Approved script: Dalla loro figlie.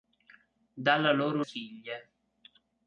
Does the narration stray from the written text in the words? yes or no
no